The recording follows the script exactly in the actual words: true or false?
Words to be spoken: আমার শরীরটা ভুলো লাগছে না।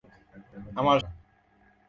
false